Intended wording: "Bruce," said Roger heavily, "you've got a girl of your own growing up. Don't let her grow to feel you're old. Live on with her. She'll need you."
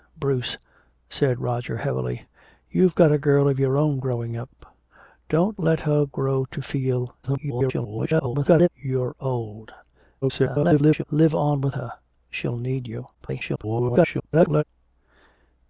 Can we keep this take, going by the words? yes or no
no